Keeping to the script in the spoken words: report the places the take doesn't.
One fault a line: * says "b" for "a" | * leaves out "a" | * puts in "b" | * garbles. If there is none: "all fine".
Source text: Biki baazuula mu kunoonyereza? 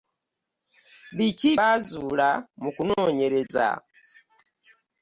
all fine